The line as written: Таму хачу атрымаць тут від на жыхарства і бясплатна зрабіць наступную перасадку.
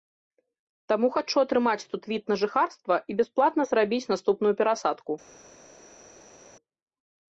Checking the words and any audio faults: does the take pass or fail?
pass